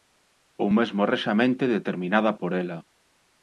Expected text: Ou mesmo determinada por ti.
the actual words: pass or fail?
fail